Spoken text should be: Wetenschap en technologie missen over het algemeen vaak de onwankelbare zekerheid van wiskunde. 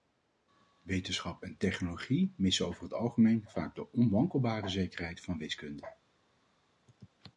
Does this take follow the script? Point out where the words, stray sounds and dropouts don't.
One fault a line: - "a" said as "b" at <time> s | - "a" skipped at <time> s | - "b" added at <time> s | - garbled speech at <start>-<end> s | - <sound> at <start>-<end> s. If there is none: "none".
none